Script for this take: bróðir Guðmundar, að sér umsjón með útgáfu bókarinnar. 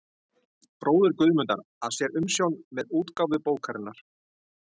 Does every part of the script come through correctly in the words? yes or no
yes